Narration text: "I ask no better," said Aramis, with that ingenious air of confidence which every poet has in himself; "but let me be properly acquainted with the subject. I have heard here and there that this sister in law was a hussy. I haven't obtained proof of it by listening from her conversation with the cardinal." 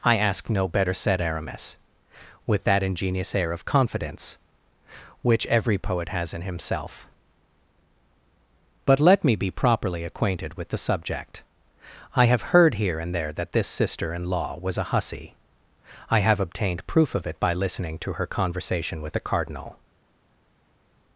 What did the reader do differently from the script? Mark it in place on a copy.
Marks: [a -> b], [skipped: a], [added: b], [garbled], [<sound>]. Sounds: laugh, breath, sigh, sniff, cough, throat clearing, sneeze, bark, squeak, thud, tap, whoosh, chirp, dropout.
"I ask no better," said Aramis, with that ingenious air of confidence which every poet has in himself; "but let me be properly acquainted with the subject. I have heard here and there that this sister in law was a hussy. I [haven't -> have] obtained proof of it by listening [from -> to] her conversation with the cardinal."